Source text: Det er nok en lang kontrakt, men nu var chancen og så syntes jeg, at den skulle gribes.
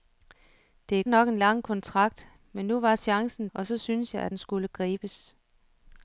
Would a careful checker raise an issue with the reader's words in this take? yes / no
no